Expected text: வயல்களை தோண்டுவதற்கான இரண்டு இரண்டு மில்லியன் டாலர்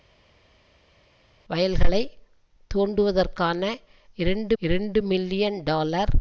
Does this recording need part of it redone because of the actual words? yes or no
no